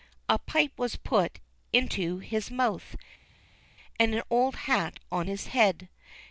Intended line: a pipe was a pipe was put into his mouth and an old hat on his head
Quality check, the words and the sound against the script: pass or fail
fail